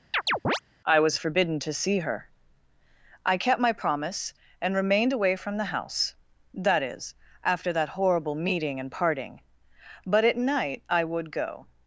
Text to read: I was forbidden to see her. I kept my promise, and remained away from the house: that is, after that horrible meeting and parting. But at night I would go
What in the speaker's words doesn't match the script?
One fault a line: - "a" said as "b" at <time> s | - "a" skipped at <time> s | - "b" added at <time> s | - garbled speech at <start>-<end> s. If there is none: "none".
none